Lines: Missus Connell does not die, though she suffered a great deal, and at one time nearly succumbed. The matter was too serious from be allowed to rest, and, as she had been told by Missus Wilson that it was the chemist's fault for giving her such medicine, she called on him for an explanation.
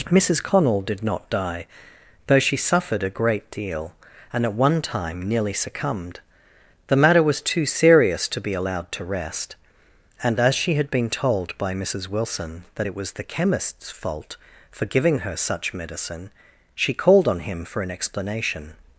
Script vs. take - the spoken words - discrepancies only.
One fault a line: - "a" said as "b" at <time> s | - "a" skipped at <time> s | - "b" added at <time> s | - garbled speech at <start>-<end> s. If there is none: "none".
- "does" said as "did" at 0.8 s
- "from" said as "to" at 8.3 s